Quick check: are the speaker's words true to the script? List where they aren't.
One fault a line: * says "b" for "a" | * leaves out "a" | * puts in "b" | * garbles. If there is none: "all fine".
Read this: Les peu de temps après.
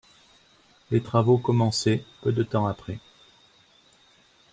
* puts in "travaux commencés"